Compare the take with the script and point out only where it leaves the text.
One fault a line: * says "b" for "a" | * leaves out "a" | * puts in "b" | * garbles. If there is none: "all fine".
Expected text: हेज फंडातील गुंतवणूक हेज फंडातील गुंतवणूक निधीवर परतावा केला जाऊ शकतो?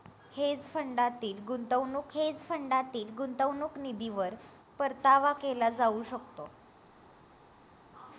all fine